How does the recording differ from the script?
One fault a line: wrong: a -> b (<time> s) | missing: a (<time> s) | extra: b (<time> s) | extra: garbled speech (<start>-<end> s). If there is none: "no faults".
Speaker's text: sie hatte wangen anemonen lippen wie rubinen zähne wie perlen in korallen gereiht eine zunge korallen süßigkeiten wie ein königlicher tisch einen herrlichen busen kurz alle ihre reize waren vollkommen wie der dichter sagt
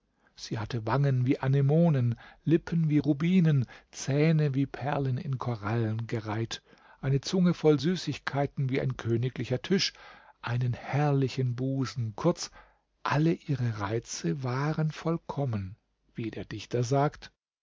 extra: wie (1.3 s)
wrong: korallen -> voll (7.5 s)